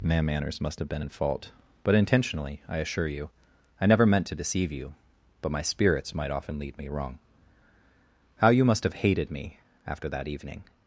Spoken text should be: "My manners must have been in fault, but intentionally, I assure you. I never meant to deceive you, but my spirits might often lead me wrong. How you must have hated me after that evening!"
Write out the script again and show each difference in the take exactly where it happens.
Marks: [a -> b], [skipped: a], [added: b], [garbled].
"My manners must have been in fault, but intentionally, I assure you. I never meant to deceive you, but my spirits might often lead me wrong. How you must have hated me after that evening!"